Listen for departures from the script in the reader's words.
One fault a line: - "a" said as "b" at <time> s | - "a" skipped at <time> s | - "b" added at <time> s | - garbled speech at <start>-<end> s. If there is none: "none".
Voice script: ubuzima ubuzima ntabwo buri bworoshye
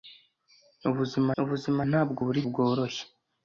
none